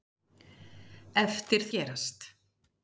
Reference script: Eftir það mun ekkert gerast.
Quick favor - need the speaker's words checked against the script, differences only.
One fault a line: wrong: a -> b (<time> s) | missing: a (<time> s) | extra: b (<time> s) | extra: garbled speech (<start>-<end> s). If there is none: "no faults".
missing: það mun ekkert (1.7 s)